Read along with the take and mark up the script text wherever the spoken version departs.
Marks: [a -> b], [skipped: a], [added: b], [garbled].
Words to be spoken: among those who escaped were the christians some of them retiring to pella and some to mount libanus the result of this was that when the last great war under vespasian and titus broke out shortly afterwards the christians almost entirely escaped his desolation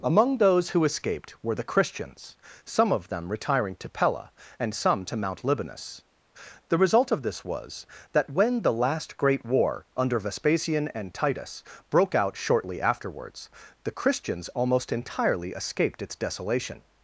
among those who escaped were the christians some of them retiring to pella and some to mount libanus the result of this was that when the last great war under vespasian and titus broke out shortly afterwards the christians almost entirely escaped [his -> its] desolation